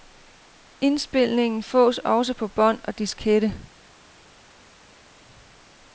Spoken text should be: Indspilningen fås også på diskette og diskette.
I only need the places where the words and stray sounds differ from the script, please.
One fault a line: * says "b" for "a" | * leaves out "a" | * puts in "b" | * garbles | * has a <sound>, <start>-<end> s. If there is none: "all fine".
* says "bånd" for "diskette"